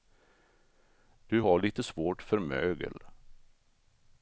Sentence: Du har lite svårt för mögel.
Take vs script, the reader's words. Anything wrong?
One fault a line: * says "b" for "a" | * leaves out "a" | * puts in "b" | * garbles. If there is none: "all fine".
all fine